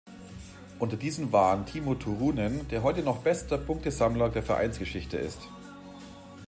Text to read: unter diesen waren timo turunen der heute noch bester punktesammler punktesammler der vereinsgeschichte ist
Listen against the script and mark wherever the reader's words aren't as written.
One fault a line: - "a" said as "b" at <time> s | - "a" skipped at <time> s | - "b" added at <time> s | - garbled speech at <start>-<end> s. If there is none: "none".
- "punktesammler" skipped at 4.3 s